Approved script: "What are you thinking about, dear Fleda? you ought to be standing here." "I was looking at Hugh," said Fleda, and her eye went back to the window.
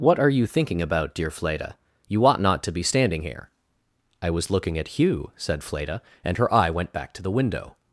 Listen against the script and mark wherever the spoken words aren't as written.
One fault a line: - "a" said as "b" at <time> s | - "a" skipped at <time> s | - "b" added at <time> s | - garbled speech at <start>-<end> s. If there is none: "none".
- "not" added at 2.4 s